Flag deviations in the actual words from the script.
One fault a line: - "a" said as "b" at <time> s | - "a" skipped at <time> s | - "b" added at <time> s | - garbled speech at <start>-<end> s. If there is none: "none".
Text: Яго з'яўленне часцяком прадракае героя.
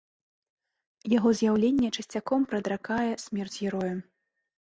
- "смерць" added at 3.3 s